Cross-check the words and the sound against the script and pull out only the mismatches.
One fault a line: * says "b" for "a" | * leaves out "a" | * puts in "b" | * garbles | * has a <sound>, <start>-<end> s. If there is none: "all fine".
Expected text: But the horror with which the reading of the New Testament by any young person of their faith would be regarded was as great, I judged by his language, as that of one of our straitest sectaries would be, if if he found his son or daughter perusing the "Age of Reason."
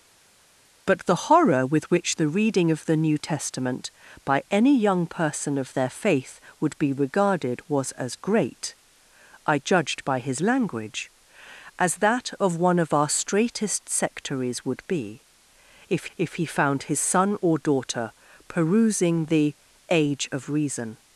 all fine